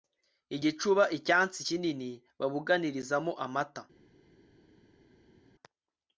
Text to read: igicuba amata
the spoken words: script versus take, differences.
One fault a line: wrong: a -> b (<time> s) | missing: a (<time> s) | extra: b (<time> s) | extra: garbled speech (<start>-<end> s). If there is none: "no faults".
extra: icyansi kinini babuganizamo (1.2 s)